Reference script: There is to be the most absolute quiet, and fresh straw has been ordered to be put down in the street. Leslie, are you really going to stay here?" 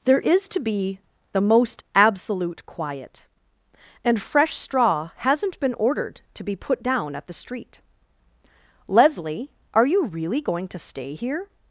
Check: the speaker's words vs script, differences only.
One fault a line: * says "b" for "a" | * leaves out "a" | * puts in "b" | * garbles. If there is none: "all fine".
* says "hasn't" for "has"
* says "at" for "in"